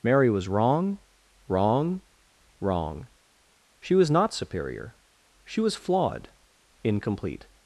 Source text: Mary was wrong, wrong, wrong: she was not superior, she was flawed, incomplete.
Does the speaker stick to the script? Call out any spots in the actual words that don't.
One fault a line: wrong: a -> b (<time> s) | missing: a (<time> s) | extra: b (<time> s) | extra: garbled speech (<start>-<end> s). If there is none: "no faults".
no faults